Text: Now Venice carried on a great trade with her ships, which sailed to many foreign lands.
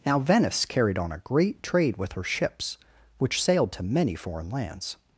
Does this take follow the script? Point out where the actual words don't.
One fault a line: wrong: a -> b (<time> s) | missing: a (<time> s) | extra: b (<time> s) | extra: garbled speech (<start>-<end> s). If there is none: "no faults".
no faults